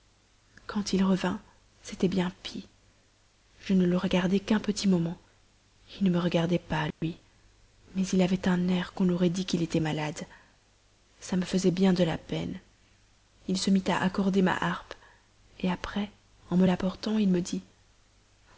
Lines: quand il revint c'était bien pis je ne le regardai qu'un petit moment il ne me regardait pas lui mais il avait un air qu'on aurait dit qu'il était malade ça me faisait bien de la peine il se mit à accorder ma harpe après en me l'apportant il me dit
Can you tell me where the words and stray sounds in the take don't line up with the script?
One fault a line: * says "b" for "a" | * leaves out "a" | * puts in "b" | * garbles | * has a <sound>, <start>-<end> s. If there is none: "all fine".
* has a dropout, 6.9-7.0 s